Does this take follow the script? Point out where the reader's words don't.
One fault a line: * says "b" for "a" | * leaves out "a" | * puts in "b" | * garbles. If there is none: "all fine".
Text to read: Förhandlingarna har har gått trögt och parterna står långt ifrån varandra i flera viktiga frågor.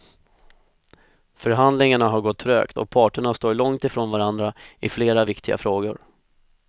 * leaves out "har"